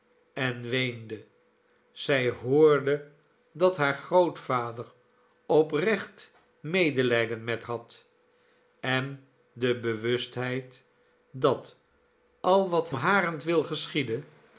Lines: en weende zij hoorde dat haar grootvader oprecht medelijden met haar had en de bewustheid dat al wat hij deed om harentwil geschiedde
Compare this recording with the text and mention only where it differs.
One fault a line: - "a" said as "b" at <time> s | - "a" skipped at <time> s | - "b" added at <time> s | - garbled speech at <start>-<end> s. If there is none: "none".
- "haar" skipped at 7.6 s
- "hij deed om" skipped at 12.9 s